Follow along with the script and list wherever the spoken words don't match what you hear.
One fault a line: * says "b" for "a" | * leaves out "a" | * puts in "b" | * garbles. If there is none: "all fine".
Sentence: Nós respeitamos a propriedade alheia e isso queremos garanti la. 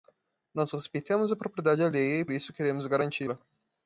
all fine